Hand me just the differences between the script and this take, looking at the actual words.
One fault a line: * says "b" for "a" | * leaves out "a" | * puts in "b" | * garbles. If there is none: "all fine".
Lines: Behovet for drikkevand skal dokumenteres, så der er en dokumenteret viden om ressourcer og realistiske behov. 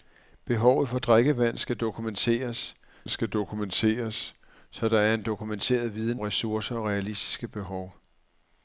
* puts in "skal dokumenteres"
* leaves out "om"